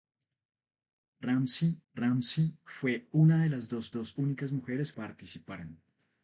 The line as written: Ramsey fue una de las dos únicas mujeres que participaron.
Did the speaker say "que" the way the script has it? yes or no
no